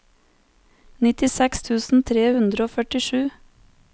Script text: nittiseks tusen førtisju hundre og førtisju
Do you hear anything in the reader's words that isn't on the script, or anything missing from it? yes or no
yes